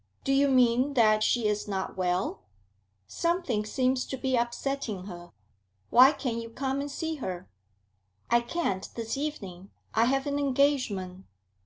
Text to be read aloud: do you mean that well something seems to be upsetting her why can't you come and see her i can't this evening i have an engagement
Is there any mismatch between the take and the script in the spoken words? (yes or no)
yes